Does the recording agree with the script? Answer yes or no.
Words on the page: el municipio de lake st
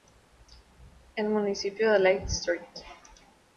yes